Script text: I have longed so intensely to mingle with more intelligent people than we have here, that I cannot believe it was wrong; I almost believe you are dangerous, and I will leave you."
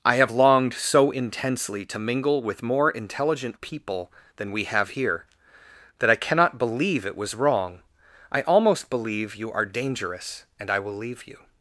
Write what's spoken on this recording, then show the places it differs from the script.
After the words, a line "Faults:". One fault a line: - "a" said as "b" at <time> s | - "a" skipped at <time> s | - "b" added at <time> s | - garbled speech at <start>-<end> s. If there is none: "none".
I have longed so intensely to mingle with more intelligent people than we have here, that I cannot believe it was wrong; I almost believe you are dangerous, and I will leave you."
Faults:
none